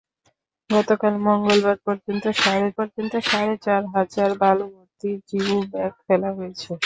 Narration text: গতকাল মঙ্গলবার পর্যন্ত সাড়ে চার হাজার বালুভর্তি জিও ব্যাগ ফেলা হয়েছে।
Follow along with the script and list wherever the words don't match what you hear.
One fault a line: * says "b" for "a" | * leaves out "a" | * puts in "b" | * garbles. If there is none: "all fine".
* puts in "পর্যন্ত সাড়ে"